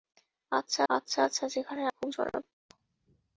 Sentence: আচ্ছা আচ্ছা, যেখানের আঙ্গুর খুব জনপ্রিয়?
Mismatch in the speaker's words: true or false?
true